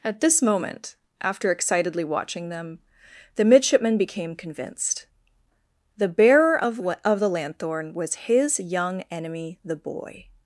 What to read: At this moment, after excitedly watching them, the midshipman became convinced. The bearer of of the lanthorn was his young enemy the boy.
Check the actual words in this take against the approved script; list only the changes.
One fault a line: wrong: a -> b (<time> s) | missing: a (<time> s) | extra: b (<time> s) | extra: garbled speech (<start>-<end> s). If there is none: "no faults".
no faults